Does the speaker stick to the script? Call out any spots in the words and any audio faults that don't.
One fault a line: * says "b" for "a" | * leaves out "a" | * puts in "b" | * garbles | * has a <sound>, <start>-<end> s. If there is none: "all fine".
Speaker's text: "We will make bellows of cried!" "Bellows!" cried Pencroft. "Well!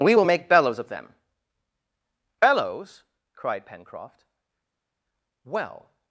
* says "them" for "cried"